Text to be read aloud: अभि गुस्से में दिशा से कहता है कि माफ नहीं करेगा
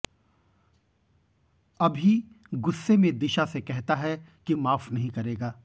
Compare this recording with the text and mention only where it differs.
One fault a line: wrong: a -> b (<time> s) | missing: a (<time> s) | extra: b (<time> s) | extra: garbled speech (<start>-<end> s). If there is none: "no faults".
no faults